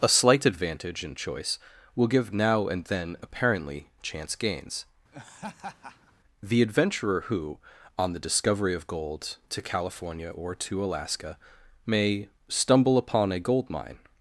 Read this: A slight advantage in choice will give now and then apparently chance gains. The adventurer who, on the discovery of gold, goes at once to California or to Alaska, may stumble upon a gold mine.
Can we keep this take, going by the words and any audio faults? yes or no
no